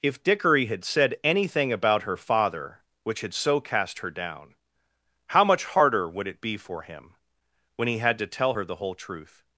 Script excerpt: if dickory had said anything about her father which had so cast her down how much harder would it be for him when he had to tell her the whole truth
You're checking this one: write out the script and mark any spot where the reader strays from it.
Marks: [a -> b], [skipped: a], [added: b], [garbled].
if dickory had said anything about her father which had so cast her down how much harder would it be for him when he had to tell her the whole truth